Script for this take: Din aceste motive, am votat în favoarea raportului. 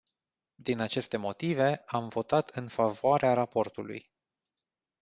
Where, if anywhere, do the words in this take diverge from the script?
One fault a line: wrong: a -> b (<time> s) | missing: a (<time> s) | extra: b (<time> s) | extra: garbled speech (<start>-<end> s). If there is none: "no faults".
no faults